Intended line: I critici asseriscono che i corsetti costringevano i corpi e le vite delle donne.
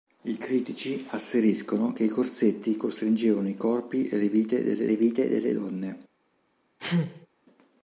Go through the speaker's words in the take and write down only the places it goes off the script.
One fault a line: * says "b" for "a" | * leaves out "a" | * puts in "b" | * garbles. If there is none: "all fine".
* puts in "le vite delle"